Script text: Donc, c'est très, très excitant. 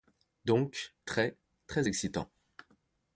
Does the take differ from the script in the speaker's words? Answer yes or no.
yes